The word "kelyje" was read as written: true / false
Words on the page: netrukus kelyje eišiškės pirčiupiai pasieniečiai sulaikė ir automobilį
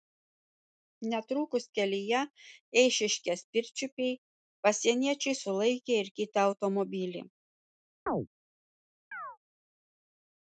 true